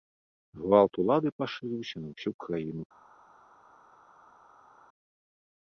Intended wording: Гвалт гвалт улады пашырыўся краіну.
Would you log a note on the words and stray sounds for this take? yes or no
yes